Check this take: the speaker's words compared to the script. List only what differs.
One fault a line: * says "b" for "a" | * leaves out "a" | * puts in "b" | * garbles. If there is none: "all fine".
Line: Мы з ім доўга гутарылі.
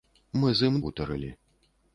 * leaves out "доўга"